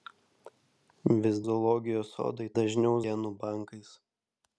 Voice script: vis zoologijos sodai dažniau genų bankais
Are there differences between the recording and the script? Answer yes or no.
no